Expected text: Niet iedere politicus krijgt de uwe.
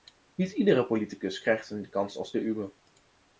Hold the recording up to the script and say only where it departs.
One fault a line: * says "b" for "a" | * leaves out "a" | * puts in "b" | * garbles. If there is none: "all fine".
* puts in "een kans als"